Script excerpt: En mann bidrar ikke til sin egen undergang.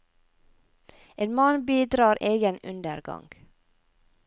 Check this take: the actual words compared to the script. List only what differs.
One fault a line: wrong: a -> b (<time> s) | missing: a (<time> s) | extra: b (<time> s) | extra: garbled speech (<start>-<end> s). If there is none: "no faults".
missing: ikke til sin (2.2 s)